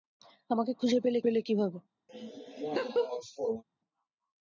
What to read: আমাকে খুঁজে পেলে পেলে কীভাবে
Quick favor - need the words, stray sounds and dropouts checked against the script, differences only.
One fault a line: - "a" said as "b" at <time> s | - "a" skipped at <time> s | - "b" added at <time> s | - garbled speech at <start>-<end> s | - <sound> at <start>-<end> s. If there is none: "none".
- laugh at 2.1-3.6 s